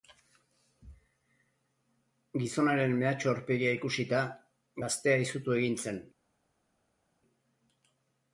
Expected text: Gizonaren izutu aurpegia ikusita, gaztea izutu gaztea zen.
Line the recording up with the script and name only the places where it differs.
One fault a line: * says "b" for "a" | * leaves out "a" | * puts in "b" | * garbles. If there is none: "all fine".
* says "mehatxu" for "izutu"
* says "egin" for "gaztea"